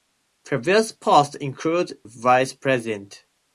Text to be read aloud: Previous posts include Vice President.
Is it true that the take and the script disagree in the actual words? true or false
false